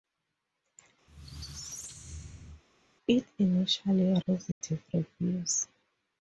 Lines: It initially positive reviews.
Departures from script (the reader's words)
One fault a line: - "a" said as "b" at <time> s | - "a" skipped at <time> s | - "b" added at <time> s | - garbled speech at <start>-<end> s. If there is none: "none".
none